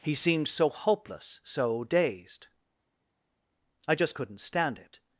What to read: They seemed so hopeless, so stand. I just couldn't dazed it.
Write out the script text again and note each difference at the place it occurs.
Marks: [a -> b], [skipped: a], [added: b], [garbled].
[They -> He] seemed so hopeless, so [stand. -> dazed] I just couldn't [dazed -> stand] it.